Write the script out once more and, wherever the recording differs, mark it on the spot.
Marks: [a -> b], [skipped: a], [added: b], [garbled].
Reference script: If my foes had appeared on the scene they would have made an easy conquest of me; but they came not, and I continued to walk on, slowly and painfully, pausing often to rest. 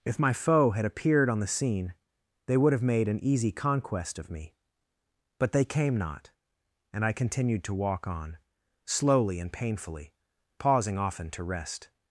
If my [foes -> foe] had appeared on the scene they would have made an easy conquest of me; but they came not, and I continued to walk on, slowly and painfully, pausing often to rest.